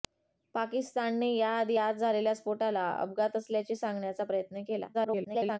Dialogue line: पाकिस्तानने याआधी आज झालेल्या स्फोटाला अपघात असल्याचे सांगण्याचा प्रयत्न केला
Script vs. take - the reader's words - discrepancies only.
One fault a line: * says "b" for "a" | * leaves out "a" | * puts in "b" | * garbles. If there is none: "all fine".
* garbles